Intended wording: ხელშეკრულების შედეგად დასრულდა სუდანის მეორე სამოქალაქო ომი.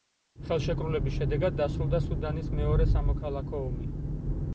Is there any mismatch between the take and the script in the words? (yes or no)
no